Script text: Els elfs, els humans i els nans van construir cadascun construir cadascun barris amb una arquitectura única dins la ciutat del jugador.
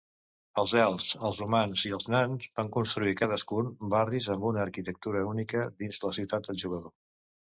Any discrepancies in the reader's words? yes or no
yes